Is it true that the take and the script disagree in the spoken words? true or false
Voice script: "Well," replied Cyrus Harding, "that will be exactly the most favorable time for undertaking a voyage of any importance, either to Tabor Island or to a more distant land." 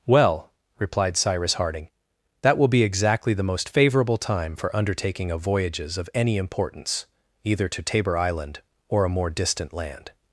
true